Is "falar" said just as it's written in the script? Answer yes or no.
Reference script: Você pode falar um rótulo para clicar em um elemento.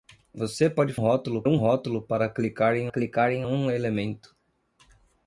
no